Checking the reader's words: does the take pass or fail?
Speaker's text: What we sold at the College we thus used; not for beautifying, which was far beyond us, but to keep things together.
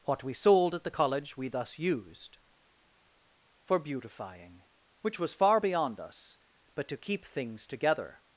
fail